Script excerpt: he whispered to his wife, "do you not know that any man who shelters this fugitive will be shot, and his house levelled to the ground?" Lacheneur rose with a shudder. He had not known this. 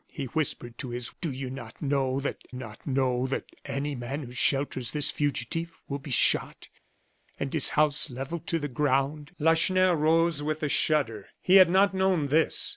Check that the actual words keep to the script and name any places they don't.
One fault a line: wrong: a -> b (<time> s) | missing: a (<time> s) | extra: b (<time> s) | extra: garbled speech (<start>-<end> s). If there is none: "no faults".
missing: wife (1.1 s)
extra: not know that (2.5 s)